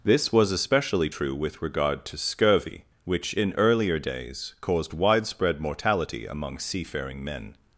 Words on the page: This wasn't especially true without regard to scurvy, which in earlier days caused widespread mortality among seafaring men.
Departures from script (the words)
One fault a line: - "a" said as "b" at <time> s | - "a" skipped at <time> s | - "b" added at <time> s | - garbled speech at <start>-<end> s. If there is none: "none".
- "wasn't" said as "was" at 0.3 s
- "without" said as "with" at 1.3 s